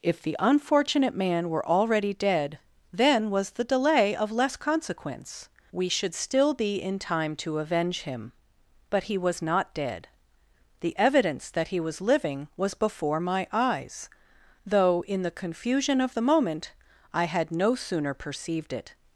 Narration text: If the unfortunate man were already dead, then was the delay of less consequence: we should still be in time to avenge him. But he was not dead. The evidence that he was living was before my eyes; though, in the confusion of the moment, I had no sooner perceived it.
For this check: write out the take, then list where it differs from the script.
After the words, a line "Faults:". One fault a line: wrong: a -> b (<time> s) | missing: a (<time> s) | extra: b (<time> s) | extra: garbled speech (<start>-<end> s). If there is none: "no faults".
If the unfortunate man were already dead, then was the delay of less consequence: we should still be in time to avenge him. But he was not dead. The evidence that he was living was before my eyes; though, in the confusion of the moment, I had no sooner perceived it.
Faults:
no faults